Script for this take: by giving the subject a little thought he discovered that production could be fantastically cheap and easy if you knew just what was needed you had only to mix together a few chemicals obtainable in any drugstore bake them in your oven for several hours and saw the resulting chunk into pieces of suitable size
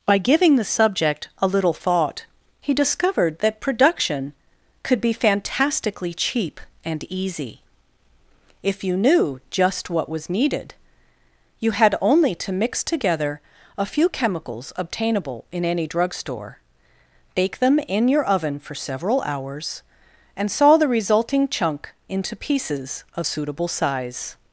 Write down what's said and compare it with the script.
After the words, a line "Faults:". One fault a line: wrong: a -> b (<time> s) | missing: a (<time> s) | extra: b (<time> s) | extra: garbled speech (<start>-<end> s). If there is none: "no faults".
by giving the subject a little thought he discovered that production could be fantastically cheap and easy if you knew just what was needed you had only to mix together a few chemicals obtainable in any drugstore bake them in your oven for several hours and saw the resulting chunk into pieces of suitable size
Faults:
no faults